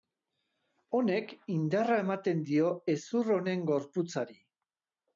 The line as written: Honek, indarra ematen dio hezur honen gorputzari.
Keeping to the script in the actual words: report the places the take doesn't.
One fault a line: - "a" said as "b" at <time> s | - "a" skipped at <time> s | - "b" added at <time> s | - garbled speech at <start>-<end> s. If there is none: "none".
none